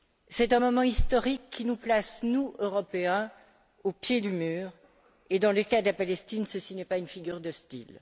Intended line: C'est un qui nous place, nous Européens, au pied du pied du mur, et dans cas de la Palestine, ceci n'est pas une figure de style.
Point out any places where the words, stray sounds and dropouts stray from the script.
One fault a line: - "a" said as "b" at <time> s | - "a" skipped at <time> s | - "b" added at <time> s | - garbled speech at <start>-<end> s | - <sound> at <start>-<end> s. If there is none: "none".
- "moment historique" added at 0.6 s
- "pied du" skipped at 4.3 s
- "le" added at 5.5 s